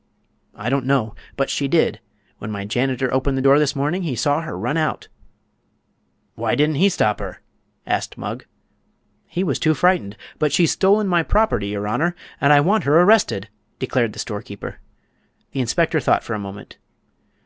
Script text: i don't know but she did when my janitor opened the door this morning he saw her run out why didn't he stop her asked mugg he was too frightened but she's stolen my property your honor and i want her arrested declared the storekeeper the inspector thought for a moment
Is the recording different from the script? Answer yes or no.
no